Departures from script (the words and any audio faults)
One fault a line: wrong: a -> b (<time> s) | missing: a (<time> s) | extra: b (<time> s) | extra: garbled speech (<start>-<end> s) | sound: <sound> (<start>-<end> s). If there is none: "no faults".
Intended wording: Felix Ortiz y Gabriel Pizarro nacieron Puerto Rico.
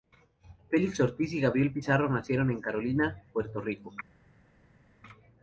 extra: en Carolina (2.5 s)